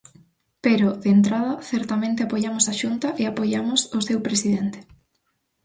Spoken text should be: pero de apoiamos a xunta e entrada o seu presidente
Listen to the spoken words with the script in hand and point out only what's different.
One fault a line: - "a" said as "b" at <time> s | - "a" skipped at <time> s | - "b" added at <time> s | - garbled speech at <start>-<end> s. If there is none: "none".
- "entrada certamente" added at 1.2 s
- "entrada" said as "apoiamos" at 3.3 s